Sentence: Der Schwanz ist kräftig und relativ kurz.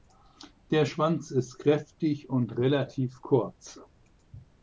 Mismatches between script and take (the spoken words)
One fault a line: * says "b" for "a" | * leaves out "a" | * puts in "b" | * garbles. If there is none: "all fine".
all fine